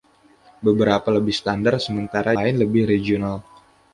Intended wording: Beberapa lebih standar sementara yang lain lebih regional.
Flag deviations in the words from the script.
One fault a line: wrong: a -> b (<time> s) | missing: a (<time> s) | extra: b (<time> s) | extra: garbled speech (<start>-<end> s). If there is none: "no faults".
missing: yang (2.3 s)